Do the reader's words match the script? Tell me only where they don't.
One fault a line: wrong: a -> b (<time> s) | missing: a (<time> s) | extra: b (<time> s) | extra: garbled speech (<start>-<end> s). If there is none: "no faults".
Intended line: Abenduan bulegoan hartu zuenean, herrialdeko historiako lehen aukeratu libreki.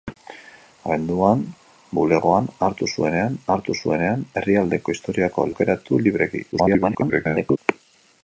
extra: hartu zuenean (3.6 s)
missing: lehen (5.5 s)
extra: garbled speech (6.5-7.6 s)